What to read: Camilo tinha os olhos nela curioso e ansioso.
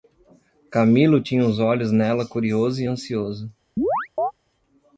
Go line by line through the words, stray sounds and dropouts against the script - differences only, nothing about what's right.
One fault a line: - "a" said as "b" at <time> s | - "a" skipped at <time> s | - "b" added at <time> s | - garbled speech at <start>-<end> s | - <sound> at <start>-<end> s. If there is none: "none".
- chirp at 3.8-4.3 s